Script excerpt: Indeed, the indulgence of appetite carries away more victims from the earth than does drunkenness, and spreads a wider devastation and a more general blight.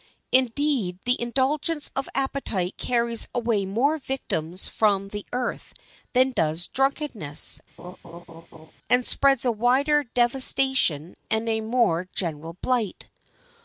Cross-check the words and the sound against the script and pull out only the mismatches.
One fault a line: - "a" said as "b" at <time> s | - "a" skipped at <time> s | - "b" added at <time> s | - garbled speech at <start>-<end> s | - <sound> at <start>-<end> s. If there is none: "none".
- laugh at 7.8-8.7 s